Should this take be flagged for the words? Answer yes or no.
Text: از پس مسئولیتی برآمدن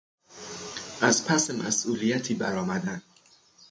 no